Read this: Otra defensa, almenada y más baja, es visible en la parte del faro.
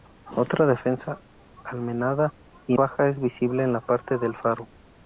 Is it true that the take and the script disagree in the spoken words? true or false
true